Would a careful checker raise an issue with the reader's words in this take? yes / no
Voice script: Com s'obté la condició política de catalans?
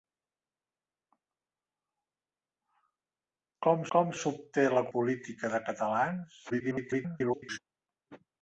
yes